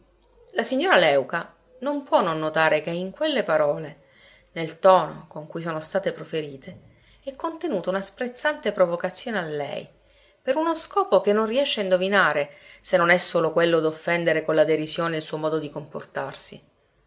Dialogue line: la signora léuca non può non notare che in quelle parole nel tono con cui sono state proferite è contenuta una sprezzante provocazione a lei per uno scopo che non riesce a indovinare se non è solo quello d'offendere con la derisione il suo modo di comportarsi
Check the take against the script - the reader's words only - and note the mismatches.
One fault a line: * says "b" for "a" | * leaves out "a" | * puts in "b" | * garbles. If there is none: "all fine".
all fine